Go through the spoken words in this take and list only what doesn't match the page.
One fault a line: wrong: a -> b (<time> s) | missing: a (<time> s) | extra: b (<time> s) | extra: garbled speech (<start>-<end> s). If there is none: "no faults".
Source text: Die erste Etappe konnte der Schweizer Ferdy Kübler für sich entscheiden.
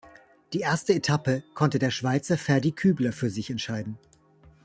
no faults